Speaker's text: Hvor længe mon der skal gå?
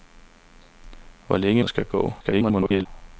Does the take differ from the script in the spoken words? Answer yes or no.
yes